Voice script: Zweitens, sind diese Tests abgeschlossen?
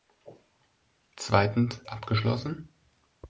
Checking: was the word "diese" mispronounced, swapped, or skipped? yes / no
yes